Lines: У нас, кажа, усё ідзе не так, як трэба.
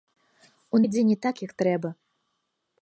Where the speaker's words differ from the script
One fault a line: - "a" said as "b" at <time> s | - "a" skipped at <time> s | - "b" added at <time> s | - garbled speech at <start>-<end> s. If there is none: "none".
- "нас кажа усё" skipped at 0.8 s